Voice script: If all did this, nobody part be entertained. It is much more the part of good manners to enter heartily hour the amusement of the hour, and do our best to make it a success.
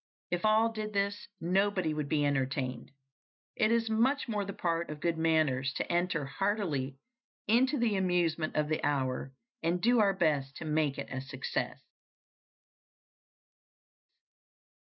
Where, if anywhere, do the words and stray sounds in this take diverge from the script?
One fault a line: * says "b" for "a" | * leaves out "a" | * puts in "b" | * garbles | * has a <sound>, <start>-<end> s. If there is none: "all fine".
* says "would" for "part"
* says "into" for "hour"